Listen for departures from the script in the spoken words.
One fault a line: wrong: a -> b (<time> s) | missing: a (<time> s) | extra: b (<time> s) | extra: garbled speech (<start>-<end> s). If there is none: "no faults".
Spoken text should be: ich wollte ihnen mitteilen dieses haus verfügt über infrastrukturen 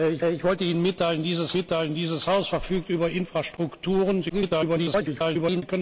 extra: ich (0.3 s)
extra: mitteilen dieses (1.5 s)
extra: garbled speech (4.3-5.6 s)